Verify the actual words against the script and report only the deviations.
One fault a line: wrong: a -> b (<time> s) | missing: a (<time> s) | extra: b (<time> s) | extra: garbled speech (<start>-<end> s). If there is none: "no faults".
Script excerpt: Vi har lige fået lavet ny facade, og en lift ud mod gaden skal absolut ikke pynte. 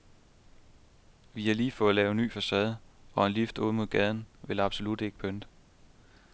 wrong: skal -> vil (4.4 s)